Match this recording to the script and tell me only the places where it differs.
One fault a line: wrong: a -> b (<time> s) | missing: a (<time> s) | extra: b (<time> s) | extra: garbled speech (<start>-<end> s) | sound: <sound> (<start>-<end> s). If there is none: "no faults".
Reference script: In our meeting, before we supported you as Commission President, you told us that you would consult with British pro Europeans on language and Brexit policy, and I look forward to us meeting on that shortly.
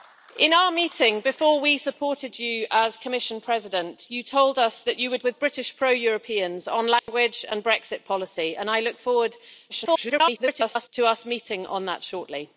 missing: consult (5.2 s)
sound: dropout (7.0-7.1 s)
extra: garbled speech (9.7-10.9 s)